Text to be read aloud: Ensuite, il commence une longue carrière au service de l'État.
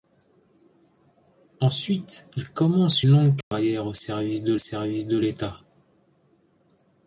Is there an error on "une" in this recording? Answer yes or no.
yes